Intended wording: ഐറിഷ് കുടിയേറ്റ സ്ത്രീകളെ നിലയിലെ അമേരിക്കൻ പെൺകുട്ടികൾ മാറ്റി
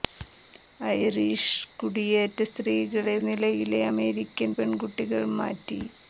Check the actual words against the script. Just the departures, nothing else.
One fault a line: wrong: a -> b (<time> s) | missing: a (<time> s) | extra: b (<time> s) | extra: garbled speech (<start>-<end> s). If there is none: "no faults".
no faults